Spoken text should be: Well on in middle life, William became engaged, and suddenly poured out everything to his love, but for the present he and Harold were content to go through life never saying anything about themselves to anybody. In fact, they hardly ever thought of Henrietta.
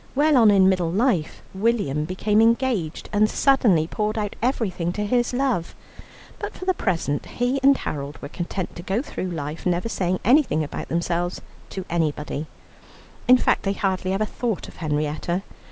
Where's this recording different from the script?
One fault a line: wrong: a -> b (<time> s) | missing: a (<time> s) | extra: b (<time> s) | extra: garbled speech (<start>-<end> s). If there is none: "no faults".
no faults